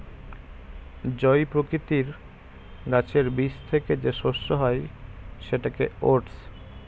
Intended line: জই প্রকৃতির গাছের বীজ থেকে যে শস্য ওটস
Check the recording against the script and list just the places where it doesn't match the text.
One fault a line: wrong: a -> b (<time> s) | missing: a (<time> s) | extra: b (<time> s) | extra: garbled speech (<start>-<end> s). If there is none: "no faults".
extra: হয় সেটাকে (4.5 s)